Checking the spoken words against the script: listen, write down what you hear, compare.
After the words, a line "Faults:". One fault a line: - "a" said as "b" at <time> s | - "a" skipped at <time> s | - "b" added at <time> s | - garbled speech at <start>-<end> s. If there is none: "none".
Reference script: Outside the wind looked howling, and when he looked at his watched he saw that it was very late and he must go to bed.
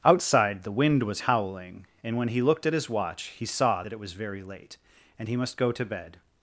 Outside the wind was howling, and when he looked at his watch he saw that it was very late and he must go to bed.
Faults:
- "looked" said as "was" at 1.0 s
- "watched" said as "watch" at 2.9 s